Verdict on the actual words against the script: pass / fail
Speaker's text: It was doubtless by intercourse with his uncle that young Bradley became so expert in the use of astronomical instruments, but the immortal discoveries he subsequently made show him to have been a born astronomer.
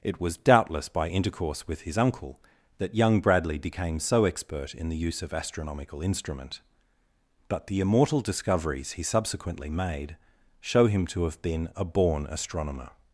fail